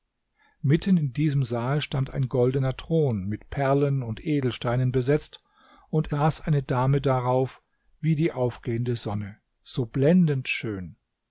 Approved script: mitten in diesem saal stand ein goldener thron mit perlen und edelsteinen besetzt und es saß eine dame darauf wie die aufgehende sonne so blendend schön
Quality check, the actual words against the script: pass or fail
fail